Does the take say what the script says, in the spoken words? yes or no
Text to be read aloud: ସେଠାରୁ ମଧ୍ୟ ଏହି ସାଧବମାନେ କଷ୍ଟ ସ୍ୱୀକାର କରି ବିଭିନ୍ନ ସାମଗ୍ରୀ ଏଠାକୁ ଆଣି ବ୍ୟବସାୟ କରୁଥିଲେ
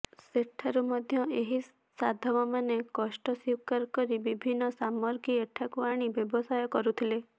yes